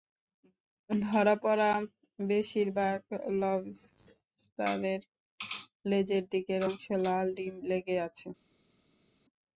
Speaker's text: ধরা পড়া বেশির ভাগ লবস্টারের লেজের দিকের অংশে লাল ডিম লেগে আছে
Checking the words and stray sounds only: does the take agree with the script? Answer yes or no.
yes